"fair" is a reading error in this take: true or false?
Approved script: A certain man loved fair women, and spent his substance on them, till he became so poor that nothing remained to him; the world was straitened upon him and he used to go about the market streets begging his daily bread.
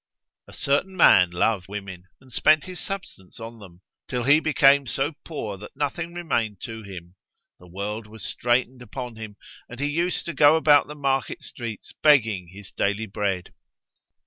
true